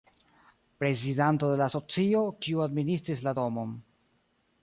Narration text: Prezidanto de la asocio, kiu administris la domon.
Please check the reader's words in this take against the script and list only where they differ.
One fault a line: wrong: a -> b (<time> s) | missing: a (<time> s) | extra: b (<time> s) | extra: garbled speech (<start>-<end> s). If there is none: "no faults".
no faults